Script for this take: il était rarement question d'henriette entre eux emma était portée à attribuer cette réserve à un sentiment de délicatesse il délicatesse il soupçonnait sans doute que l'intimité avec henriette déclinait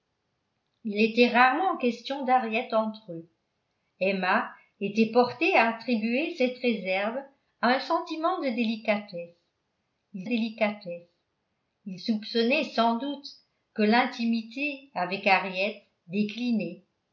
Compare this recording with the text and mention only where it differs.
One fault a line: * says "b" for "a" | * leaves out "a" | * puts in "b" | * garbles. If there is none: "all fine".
all fine